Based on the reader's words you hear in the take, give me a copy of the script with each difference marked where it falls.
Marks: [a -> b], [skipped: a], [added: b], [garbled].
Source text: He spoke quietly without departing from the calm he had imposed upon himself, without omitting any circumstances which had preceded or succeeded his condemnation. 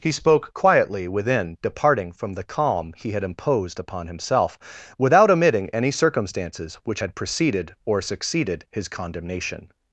He spoke quietly [without -> within] departing from the calm he had imposed upon himself, without omitting any circumstances which had preceded or succeeded his condemnation.